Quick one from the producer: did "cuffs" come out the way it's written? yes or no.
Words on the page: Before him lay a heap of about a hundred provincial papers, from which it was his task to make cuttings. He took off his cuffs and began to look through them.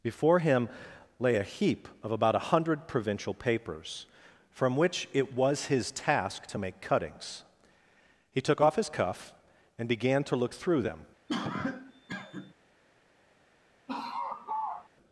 no